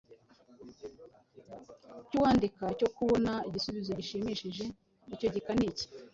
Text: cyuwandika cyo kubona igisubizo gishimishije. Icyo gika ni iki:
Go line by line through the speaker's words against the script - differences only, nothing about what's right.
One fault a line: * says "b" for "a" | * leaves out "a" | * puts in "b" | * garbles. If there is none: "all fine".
all fine